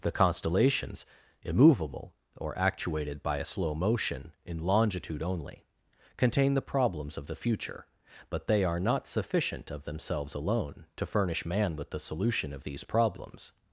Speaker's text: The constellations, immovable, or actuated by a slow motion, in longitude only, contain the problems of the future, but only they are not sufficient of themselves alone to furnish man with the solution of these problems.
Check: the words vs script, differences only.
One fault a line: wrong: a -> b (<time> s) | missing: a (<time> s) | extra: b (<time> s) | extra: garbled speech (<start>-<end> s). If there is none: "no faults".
missing: only (8.5 s)